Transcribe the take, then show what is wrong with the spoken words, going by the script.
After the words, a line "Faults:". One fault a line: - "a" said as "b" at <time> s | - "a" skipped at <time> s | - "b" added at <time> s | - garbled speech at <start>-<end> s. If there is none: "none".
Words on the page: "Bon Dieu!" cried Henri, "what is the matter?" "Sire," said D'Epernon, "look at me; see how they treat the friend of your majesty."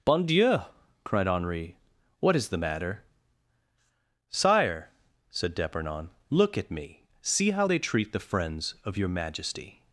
"Bon Dieu!" cried Henri, "what is the matter?" "Sire," said D'Epernon, "look at me; see how they treat the friends of your majesty."
Faults:
- "friend" said as "friends" at 8.2 s